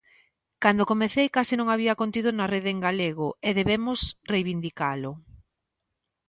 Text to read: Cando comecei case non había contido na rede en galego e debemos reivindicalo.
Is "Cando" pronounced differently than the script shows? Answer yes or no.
no